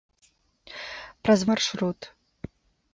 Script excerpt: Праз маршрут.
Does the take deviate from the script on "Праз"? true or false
false